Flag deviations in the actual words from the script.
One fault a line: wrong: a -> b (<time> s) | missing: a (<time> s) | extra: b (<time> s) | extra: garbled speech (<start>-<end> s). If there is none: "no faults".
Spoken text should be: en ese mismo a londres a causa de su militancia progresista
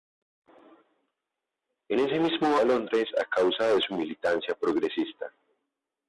no faults